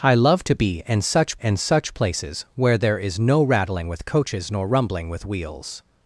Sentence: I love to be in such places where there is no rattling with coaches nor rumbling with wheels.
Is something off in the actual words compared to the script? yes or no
yes